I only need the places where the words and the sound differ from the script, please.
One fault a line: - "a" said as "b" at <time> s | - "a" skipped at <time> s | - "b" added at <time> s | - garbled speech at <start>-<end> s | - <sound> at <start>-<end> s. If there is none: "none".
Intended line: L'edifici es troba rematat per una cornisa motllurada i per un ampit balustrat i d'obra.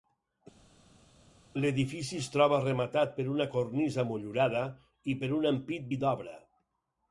- "balustrat" skipped at 5.9 s